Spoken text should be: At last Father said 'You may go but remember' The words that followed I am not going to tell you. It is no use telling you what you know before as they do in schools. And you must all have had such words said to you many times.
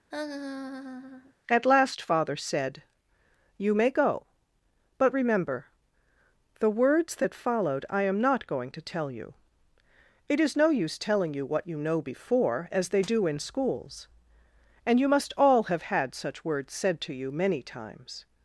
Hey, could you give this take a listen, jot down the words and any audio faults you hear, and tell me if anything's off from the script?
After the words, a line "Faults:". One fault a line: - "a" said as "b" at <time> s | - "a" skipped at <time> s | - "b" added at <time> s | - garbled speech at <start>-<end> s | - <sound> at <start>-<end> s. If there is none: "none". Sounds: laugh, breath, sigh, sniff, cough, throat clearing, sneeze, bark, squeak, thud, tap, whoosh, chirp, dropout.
At last Father said 'You may go but remember' The words that followed I am not going to tell you. It is no use telling you what you know before as they do in schools. And you must all have had such words said to you many times.
Faults:
- laugh at 0.1-1.3 s